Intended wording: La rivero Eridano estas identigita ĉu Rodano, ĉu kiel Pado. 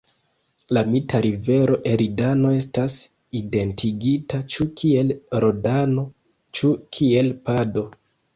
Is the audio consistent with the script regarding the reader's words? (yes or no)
no